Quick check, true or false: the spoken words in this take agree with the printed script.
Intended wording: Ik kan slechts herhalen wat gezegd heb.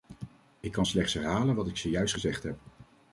false